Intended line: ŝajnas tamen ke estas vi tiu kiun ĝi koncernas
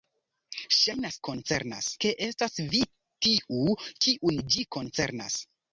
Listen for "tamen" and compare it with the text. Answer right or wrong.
wrong